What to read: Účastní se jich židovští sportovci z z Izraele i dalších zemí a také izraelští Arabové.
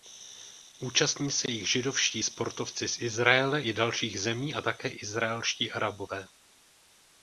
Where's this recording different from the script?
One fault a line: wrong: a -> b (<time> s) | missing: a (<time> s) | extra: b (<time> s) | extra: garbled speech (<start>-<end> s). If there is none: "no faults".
missing: z (3.0 s)